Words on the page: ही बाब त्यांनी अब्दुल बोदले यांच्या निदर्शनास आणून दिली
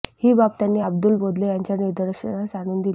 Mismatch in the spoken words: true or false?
false